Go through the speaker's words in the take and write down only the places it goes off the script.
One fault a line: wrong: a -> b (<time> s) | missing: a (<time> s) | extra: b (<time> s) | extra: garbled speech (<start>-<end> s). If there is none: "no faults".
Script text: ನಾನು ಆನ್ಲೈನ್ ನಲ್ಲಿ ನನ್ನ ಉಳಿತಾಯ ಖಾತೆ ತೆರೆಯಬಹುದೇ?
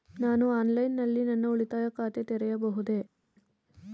no faults